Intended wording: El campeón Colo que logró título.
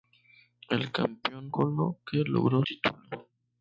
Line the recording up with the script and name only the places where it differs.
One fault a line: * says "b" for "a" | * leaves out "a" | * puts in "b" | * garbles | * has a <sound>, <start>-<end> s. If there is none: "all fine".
all fine